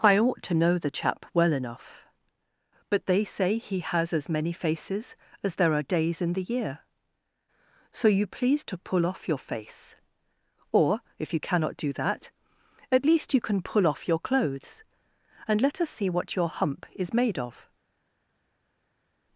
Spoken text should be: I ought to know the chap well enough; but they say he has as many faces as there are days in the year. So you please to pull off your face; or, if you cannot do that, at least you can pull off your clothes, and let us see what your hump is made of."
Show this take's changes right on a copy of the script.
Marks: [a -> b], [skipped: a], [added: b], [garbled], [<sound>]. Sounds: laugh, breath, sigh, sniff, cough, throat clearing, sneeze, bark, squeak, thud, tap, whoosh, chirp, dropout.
I ought to know the chap well enough; but they say he has as many faces as there are days in the year. So you please to pull off your face; or, if you cannot do that, at least you can pull off your clothes, and let us see what your hump is made of."